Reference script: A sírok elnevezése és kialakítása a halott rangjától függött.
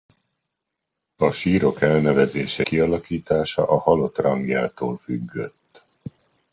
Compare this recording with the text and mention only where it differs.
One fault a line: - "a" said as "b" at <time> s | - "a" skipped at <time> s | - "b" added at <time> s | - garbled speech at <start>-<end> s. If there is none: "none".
- "és" skipped at 2.6 s